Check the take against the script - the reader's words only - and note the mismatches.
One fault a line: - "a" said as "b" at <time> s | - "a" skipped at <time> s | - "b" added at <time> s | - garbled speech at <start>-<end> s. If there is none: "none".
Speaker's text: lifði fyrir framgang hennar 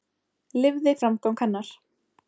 - "fyrir" skipped at 0.9 s